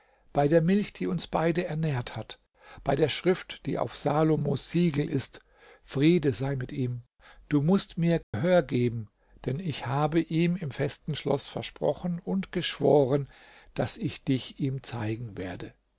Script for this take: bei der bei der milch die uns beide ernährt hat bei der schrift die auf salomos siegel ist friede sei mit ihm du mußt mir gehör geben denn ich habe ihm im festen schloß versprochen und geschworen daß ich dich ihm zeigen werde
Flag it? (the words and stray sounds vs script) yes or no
yes